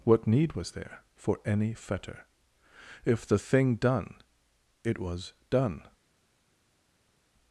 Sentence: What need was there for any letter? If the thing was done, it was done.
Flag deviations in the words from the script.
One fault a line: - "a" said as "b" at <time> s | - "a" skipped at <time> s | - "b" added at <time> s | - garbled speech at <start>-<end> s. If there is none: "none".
- "letter" said as "fetter" at 1.7 s
- "was" skipped at 3.8 s